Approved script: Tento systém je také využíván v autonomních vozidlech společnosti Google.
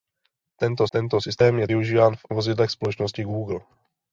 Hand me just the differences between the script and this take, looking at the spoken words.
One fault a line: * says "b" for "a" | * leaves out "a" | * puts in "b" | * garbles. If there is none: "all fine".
* puts in "tento"
* leaves out "také"
* leaves out "autonomních"